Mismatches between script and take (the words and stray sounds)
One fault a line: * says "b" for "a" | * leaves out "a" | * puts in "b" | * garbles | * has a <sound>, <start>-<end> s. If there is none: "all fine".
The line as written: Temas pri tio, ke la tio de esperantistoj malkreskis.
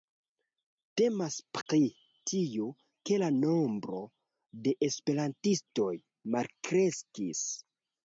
* has a dropout, 1.6-1.7 s
* says "nombro" for "tio"